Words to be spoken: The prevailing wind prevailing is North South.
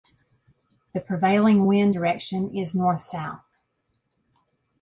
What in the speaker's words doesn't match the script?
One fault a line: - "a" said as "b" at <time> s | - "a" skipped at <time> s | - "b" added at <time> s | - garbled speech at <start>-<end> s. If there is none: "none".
- "prevailing" said as "direction" at 1.9 s